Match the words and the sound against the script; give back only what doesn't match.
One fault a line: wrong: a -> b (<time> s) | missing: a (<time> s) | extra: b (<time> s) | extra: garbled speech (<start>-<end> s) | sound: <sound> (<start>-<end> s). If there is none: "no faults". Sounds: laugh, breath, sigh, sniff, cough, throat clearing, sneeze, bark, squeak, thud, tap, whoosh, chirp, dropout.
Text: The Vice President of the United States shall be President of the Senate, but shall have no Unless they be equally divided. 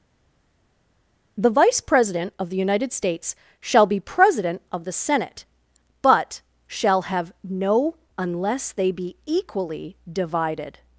no faults